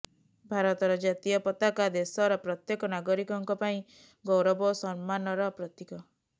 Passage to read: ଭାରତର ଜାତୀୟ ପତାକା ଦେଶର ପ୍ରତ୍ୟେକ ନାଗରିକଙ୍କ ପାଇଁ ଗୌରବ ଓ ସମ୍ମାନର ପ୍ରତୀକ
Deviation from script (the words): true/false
false